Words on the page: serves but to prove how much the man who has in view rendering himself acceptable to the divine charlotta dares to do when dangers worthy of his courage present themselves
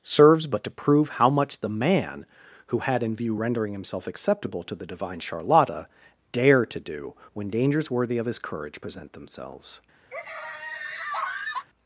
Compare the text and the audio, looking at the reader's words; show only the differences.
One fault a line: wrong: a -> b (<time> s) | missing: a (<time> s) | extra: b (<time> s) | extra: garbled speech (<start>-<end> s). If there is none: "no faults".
wrong: has -> had (2.8 s)
wrong: dares -> dare (6.3 s)